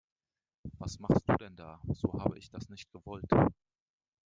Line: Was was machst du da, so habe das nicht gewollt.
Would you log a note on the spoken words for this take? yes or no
yes